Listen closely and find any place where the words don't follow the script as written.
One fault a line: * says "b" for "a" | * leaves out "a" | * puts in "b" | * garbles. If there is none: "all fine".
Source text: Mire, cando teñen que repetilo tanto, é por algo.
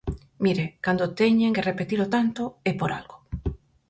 all fine